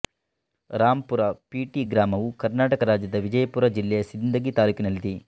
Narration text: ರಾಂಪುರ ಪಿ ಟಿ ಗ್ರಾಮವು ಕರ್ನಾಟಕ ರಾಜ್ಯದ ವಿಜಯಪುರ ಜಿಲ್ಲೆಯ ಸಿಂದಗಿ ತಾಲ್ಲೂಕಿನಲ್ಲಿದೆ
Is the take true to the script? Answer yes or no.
yes